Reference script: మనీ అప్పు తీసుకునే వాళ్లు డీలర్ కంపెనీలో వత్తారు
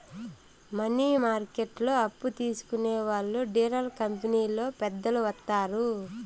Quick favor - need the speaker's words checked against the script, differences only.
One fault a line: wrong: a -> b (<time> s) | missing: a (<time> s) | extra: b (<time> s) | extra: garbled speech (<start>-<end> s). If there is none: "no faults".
extra: మార్కెట్లో (1.2 s)
extra: పెద్దలు (4.8 s)